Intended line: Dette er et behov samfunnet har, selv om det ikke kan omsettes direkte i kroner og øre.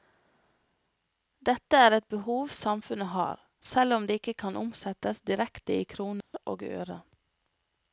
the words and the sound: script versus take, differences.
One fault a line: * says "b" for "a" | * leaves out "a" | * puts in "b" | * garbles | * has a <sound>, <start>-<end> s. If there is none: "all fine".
* has a dropout, 6.2-6.3 s